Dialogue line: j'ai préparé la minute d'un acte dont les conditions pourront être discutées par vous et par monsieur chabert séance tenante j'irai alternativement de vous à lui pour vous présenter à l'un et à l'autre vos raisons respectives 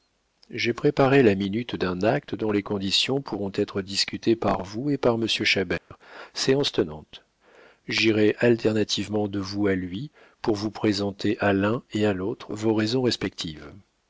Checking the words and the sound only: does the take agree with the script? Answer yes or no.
no